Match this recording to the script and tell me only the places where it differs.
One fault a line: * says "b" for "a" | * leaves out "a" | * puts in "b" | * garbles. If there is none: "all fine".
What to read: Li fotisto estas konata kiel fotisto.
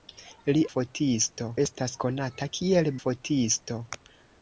all fine